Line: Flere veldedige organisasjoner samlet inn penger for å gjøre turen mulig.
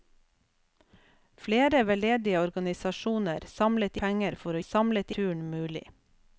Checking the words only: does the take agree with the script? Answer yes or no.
no